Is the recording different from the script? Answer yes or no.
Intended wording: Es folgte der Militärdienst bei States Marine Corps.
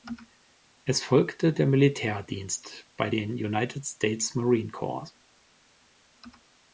yes